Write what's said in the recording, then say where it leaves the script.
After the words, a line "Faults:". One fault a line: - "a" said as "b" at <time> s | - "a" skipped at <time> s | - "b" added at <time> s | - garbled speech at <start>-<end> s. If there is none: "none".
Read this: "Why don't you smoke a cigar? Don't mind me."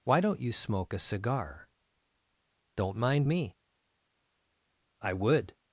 "Why don't you smoke a cigar? Don't mind me." "I would
Faults:
- "I would" added at 5.0 s